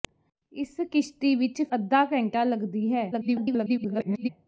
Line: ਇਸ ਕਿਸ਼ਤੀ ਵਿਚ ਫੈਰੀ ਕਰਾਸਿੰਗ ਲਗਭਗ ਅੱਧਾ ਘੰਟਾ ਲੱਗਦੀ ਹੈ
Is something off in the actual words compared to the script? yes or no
yes